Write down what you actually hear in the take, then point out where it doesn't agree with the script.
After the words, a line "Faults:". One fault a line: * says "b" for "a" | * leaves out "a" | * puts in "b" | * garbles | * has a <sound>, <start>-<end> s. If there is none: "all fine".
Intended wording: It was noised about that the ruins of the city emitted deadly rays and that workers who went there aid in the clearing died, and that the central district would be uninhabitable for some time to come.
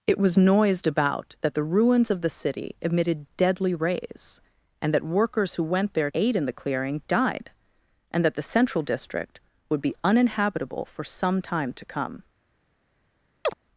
It was noised about that the ruins of the city emitted deadly rays and that workers who went there aid in the clearing died, and that the central district would be uninhabitable for some time to come.
Faults:
* has a chirp, 13.4-13.5 s